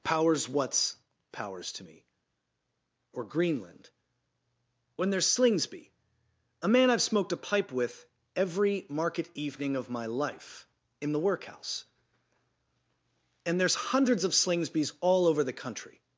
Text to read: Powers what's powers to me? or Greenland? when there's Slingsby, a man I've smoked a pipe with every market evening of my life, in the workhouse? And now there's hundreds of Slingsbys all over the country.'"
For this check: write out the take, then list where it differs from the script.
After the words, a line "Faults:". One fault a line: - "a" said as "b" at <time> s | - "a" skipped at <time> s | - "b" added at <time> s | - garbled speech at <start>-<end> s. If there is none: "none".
Powers what's powers to me? or Greenland? when there's Slingsby, a man I've smoked a pipe with every market evening of my life, in the workhouse? And there's hundreds of Slingsbys all over the country.'"
Faults:
- "now" skipped at 13.6 s